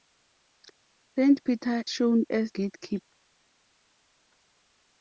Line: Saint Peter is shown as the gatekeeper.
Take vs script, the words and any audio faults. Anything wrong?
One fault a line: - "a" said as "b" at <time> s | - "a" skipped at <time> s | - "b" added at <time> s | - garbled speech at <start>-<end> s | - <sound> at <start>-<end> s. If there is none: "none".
- "is" skipped at 1.8 s
- "the" skipped at 2.5 s